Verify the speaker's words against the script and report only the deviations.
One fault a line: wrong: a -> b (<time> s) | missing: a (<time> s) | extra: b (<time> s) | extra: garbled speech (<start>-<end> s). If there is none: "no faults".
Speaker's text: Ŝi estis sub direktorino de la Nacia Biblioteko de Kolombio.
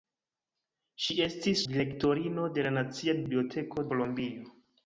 missing: sub (1.6 s)
missing: de (3.9 s)